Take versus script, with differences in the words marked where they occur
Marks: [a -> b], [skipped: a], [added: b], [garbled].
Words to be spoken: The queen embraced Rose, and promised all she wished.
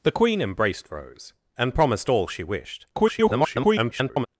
The queen embraced Rose, and promised all she wished. [garbled]